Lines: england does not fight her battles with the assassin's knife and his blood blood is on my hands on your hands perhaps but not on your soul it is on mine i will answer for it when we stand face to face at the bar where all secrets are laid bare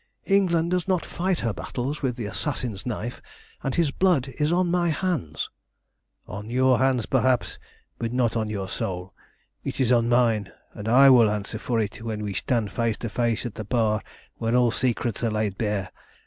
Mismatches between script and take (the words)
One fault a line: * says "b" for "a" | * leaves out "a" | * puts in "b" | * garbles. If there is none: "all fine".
* leaves out "blood"
* puts in "and"